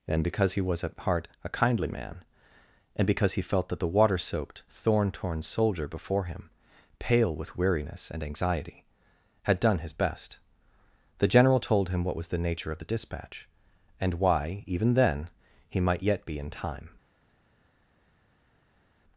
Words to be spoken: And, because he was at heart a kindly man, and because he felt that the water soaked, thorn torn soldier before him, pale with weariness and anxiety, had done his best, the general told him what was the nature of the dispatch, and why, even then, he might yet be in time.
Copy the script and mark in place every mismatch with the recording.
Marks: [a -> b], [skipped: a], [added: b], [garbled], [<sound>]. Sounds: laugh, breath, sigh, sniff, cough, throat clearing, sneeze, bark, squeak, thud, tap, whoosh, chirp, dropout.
And, because he was at heart a kindly man, and because he felt that the water soaked, thorn torn soldier before him, pale with weariness and anxiety, had done his best, the general told him what was the nature of the dispatch, and why, even then, he might yet be in time.